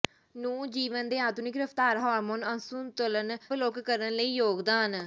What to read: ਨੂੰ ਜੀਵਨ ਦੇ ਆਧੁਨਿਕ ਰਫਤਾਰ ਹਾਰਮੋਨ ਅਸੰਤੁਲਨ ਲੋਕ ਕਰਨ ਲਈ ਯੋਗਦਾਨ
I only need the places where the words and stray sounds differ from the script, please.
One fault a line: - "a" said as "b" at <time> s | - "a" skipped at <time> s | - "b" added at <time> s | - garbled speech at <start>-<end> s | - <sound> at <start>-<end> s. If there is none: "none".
none